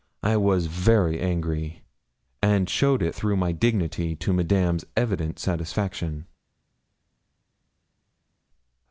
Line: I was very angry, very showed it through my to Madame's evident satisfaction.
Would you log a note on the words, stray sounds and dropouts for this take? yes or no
yes